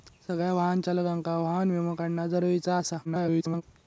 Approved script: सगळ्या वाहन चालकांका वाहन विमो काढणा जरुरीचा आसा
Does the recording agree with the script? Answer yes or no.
no